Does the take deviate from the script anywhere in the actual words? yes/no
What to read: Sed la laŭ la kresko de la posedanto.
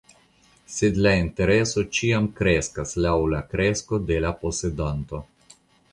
yes